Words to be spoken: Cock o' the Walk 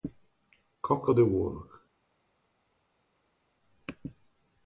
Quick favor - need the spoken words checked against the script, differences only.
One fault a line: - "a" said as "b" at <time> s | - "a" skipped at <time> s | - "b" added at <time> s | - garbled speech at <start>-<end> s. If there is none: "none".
none